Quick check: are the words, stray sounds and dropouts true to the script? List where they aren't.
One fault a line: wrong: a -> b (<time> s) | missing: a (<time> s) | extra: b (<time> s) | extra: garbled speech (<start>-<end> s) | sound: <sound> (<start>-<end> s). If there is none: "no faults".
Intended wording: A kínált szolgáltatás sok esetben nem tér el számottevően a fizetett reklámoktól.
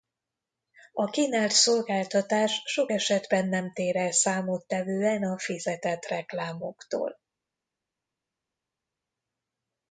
no faults